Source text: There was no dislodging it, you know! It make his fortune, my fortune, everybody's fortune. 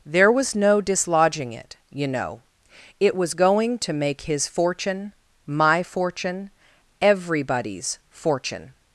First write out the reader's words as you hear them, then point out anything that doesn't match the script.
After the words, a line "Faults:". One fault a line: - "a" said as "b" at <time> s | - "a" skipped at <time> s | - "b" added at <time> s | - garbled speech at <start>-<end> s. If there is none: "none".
There was no dislodging it, you know! It was going to make his fortune, my fortune, everybody's fortune.
Faults:
- "was going to" added at 3.1 s